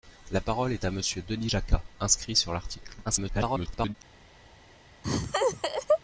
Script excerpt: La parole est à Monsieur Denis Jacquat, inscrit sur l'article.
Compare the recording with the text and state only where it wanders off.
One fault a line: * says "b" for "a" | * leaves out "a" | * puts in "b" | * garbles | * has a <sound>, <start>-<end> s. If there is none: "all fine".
* garbles
* has a laugh, 5.0-6.0 s